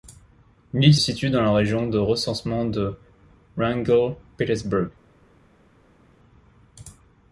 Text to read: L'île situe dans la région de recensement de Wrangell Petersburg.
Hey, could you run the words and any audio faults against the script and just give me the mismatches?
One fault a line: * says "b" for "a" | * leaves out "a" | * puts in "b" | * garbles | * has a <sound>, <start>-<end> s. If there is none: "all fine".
all fine